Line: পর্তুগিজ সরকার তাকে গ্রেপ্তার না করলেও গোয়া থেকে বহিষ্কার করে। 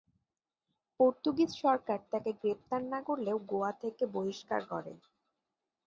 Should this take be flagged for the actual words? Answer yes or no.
no